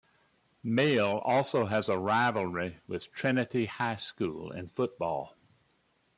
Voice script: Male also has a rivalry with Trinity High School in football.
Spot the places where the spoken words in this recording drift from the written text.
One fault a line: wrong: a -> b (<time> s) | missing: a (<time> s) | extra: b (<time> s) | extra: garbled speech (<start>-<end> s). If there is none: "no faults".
no faults